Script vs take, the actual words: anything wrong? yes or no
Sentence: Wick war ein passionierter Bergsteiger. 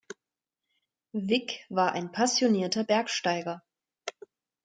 no